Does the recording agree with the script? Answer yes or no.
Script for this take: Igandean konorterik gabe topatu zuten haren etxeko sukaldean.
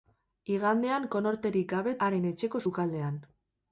no